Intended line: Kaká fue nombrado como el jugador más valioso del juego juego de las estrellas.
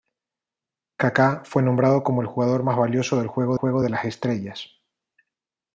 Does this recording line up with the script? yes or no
yes